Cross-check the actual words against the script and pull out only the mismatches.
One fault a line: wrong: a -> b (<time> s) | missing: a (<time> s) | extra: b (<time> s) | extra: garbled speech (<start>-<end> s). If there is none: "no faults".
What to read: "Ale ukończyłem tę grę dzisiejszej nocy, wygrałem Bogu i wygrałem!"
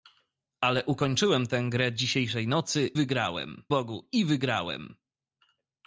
no faults